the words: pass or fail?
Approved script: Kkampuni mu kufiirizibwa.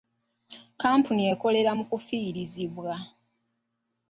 fail